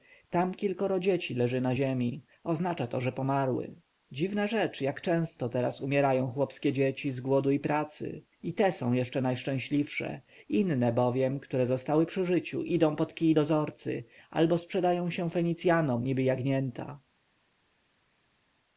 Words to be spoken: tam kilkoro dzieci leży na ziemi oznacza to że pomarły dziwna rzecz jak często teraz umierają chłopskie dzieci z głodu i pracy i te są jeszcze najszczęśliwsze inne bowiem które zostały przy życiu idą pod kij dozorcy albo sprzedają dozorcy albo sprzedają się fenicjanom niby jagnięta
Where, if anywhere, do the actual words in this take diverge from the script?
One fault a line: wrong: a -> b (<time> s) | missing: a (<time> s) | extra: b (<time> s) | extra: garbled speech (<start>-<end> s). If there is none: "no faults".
missing: dozorcy albo sprzedają (15.1 s)